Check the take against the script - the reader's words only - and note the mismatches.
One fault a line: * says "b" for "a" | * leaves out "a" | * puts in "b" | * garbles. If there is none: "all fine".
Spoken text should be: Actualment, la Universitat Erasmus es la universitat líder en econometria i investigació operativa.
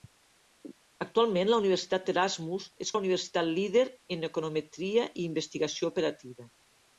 all fine